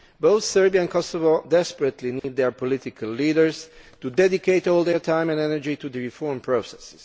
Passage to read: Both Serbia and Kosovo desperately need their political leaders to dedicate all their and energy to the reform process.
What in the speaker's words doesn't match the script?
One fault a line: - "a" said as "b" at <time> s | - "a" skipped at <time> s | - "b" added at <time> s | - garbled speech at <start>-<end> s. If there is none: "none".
- "time" added at 5.0 s